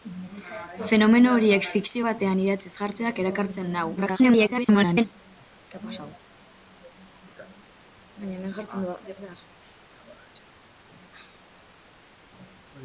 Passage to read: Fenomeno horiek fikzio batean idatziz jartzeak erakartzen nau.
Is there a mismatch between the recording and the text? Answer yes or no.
yes